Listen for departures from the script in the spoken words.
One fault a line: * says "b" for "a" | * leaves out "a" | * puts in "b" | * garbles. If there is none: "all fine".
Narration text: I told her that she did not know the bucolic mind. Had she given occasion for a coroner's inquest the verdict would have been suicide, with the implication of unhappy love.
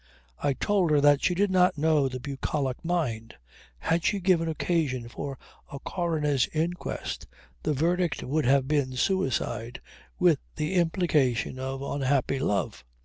all fine